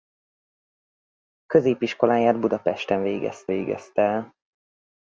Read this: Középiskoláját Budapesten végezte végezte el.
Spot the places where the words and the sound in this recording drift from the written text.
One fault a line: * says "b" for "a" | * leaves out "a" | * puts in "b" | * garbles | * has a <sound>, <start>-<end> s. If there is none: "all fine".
all fine